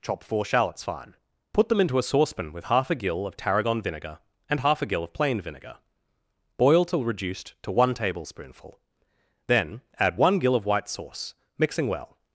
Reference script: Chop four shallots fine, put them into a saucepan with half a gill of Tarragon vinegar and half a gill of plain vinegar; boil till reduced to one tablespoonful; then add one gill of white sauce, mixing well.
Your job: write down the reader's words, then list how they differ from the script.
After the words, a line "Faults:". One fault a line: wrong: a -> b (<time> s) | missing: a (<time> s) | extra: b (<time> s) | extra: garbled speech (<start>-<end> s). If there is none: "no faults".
Chop four shallots fine, put them into a saucepan with half a gill of Tarragon vinegar and half a gill of plain vinegar; boil till reduced to one tablespoonful; then add one gill of white sauce, mixing well.
Faults:
no faults